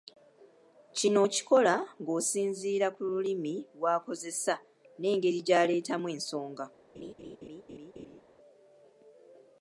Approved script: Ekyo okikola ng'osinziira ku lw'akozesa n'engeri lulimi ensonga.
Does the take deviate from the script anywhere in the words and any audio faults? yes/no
yes